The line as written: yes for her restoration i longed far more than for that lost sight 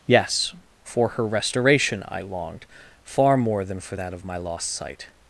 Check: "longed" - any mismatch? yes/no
no